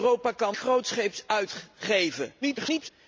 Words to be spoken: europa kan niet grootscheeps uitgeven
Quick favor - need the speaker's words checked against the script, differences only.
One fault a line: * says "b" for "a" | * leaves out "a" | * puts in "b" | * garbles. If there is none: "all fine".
* leaves out "niet"
* garbles